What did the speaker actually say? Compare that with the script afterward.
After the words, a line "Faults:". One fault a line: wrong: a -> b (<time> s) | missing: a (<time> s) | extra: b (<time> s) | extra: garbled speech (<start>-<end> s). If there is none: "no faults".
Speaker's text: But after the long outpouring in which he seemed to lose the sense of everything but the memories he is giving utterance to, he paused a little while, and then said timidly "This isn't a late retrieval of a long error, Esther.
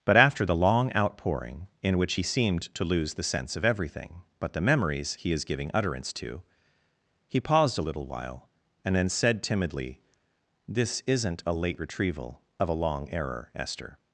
But after the long outpouring in which he seemed to lose the sense of everything but the memories he is giving utterance to, he paused a little while, and then said timidly "This isn't a late retrieval of a long error, Esther.
Faults:
no faults